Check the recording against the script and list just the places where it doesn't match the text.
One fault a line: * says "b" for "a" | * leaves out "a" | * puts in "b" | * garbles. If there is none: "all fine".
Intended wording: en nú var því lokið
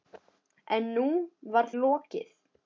* leaves out "því"